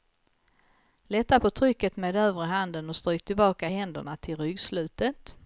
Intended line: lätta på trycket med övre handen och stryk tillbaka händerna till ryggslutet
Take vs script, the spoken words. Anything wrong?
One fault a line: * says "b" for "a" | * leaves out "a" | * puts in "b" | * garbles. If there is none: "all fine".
all fine